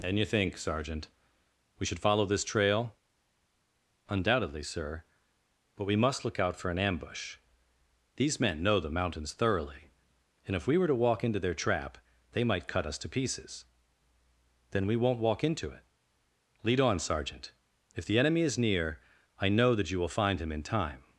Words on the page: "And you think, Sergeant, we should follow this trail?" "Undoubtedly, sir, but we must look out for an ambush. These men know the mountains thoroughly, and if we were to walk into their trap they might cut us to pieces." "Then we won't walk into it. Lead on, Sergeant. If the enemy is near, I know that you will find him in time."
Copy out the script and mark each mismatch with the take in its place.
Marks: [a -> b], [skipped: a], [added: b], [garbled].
"And you think, Sergeant, we should follow this trail?" "Undoubtedly, sir, but we must look out for an ambush. These men know the mountains thoroughly, and if we were to walk into their trap they might cut us to pieces." "Then we won't walk into it. Lead on, Sergeant. If the enemy is near, I know that you will find him in time."